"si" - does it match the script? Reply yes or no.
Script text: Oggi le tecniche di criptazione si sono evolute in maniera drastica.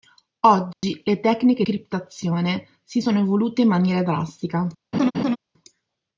yes